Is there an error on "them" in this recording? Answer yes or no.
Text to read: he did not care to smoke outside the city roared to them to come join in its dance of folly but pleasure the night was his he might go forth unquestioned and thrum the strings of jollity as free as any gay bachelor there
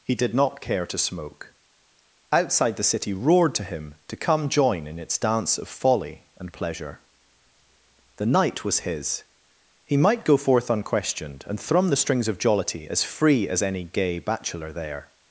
yes